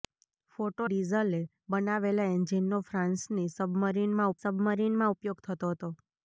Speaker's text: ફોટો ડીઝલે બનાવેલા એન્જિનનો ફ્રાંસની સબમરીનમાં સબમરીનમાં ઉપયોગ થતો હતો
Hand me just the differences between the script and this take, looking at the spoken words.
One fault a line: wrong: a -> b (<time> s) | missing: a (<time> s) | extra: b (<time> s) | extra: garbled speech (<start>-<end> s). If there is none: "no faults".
no faults